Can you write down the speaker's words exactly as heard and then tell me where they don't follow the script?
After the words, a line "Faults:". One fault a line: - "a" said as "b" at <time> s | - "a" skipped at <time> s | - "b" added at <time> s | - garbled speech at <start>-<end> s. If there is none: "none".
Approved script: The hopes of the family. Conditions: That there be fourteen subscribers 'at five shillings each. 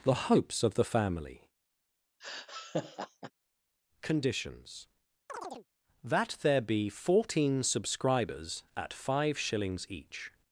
The hopes of the family. Conditions: That there be fourteen subscribers 'at five shillings each.
Faults:
none